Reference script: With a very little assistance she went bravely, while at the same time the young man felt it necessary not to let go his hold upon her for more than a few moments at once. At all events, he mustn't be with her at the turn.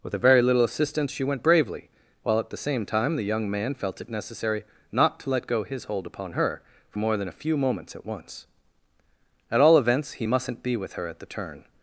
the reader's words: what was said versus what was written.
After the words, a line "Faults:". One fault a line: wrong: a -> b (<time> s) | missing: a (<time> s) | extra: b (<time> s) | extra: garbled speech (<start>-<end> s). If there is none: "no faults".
With a very little assistance she went bravely, while at the same time the young man felt it necessary not to let go his hold upon her for more than a few moments at once. At all events, he mustn't be with her at the turn.
Faults:
no faults